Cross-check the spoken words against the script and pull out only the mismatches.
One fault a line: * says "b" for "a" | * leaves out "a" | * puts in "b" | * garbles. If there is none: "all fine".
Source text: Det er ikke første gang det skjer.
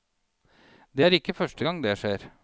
all fine